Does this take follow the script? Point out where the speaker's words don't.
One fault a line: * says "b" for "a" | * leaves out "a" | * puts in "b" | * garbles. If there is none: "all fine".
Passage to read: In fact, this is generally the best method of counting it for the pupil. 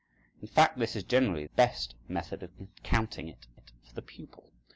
* leaves out "the"
* puts in "it"